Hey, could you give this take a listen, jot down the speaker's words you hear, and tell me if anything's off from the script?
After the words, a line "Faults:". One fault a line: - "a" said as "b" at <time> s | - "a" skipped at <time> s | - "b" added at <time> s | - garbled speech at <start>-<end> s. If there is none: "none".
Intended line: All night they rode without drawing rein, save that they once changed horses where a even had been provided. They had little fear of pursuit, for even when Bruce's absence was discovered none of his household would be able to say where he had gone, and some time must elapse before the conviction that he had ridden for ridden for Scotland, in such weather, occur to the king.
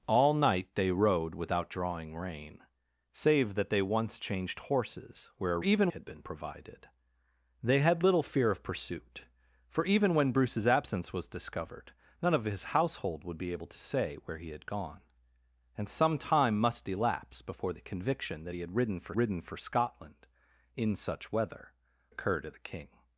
All night they rode without drawing rein, save that they once changed horses where a even had been provided. They had little fear of pursuit, for even when Bruce's absence was discovered none of his household would be able to say where he had gone, and some time must elapse before the conviction that he had ridden for ridden for Scotland, in such weather, occur to the king.
Faults:
none